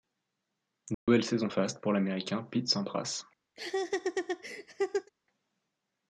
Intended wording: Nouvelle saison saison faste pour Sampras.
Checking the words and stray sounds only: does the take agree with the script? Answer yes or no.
no